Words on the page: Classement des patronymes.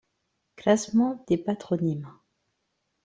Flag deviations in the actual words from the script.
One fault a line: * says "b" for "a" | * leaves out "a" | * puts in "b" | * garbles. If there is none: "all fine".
all fine